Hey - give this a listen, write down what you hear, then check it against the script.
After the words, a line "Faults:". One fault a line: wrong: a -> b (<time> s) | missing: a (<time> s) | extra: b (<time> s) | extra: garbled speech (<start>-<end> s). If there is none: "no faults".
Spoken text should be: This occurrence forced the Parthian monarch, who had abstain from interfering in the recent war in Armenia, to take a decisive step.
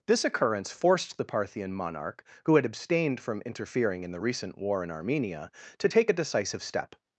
This occurrence forced the Parthian monarch, who had abstained from interfering in the recent war in Armenia, to take a decisive step.
Faults:
wrong: abstain -> abstained (2.6 s)